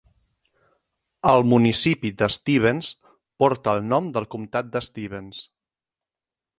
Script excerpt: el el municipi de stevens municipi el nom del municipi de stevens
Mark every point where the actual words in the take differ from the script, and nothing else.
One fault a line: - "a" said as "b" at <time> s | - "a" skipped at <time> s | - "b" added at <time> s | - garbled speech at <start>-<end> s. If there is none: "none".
- "el" skipped at 1.4 s
- "municipi" said as "porta" at 3.5 s
- "municipi" said as "comtat" at 4.3 s